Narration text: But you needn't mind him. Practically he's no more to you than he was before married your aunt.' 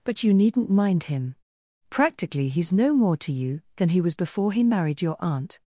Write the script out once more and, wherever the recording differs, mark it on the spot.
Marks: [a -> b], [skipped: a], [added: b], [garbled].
But you needn't mind him. Practically he's no more to you than he was before [added: he] married your aunt.'